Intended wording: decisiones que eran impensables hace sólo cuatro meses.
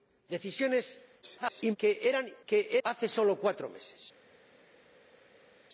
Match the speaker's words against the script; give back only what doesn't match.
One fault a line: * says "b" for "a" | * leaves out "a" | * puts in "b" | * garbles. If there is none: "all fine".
* garbles
* says "que" for "impensables"